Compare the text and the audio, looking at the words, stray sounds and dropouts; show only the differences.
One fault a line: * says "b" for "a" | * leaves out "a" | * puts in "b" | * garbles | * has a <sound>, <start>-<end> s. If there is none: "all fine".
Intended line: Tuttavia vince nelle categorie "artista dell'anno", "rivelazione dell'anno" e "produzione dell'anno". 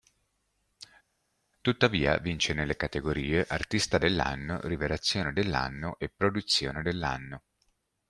all fine